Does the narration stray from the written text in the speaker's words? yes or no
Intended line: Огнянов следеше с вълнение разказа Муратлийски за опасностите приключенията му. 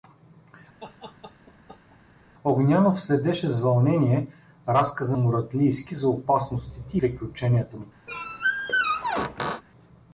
no